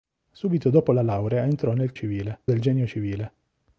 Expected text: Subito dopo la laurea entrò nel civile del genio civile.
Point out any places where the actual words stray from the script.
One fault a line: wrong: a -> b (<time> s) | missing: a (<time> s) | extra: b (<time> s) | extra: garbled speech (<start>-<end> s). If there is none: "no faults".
no faults